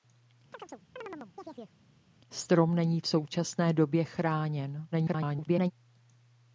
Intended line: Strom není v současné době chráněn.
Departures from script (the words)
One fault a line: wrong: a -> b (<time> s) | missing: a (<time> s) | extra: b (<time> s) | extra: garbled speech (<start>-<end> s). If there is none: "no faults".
extra: garbled speech (4.9-5.7 s)